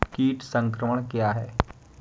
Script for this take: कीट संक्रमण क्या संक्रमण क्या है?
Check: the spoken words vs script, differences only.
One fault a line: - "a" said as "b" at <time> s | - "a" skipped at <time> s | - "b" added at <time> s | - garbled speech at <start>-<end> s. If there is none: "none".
- "संक्रमण क्या" skipped at 1.3 s